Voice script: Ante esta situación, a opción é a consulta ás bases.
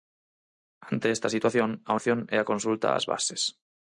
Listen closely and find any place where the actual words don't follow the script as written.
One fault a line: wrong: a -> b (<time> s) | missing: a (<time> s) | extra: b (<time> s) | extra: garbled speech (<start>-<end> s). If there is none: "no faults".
no faults